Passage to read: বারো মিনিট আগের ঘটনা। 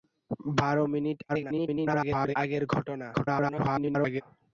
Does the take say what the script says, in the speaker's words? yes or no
no